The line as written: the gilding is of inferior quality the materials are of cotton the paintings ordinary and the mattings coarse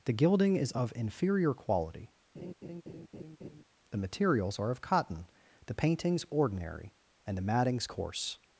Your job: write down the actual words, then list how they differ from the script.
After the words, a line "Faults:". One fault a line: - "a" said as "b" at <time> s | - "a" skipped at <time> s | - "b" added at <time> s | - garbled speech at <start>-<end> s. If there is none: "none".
the gilding is of inferior quality the materials are of cotton the paintings ordinary and the mattings coarse
Faults:
none